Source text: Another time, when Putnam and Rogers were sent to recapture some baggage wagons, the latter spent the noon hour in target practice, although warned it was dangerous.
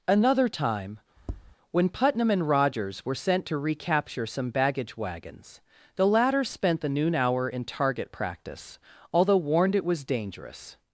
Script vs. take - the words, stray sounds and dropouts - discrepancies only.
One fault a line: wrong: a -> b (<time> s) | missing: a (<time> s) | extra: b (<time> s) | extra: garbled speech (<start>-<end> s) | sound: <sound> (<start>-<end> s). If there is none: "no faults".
sound: tap (1.2-1.6 s)